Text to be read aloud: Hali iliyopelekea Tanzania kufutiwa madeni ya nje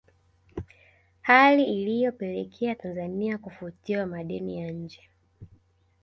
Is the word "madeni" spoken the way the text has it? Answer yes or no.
yes